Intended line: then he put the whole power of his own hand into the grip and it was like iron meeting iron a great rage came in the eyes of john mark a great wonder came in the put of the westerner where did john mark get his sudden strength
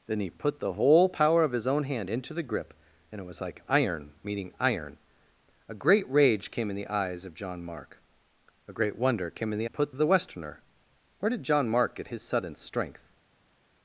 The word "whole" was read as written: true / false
true